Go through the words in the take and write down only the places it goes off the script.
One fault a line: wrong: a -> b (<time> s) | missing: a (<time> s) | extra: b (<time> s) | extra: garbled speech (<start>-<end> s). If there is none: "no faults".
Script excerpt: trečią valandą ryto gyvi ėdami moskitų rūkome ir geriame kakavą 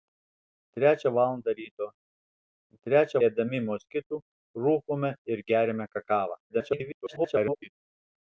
wrong: gyvi -> trečią (2.9 s)
extra: garbled speech (6.5-7.7 s)